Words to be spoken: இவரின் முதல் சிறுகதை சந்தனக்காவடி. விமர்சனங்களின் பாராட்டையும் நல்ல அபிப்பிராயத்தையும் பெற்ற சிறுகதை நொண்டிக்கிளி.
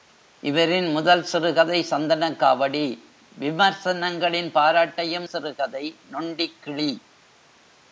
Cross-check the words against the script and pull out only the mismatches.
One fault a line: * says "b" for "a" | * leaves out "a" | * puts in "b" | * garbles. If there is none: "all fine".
* leaves out "நல்ல அபிப்பிராயத்தையும் பெற்ற"